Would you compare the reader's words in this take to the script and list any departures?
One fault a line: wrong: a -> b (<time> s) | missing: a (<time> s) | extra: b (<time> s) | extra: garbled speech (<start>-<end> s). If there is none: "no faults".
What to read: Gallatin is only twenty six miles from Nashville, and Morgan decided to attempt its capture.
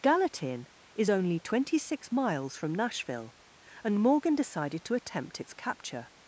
no faults